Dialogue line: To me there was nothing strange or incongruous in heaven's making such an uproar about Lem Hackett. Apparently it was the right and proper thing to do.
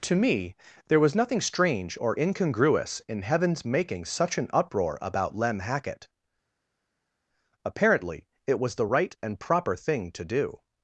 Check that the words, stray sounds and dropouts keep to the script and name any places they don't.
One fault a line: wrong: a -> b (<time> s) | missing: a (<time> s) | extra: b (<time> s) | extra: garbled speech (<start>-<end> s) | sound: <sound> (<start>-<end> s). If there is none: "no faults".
no faults